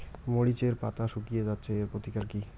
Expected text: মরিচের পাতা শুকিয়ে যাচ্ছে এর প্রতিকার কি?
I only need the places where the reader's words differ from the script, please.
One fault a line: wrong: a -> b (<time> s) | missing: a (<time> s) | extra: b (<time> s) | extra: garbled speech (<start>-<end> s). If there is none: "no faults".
no faults